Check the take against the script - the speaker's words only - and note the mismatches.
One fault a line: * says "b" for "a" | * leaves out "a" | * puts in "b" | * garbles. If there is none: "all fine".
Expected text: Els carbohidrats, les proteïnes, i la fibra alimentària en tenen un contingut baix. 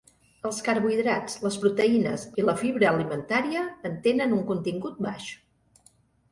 all fine